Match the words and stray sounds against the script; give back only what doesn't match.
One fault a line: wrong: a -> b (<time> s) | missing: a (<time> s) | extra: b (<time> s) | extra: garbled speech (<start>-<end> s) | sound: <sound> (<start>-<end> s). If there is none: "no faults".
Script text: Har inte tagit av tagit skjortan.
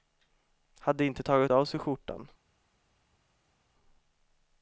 wrong: Har -> Hade (0.8 s)
wrong: tagit -> sig (1.6 s)